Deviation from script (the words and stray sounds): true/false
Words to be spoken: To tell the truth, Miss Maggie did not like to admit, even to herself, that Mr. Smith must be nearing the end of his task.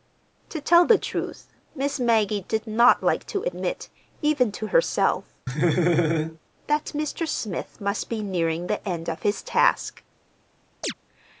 true